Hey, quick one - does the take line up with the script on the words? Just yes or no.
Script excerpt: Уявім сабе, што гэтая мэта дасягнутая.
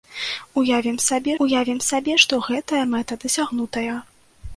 no